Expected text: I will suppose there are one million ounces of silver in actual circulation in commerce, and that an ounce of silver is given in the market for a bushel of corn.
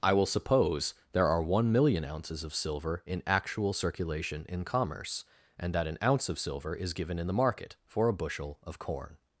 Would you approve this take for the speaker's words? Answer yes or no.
yes